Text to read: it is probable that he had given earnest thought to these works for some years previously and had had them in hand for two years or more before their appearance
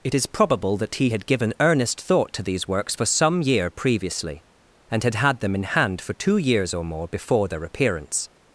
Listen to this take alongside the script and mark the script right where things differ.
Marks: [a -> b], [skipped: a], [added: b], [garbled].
it is probable that he had given earnest thought to these works for some [years -> year] previously and had had them in hand for two years or more before their appearance